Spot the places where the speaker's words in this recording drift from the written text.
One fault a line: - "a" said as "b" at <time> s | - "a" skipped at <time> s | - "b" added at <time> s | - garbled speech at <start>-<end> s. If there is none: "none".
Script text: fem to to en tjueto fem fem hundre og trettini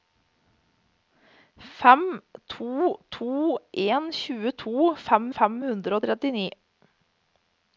none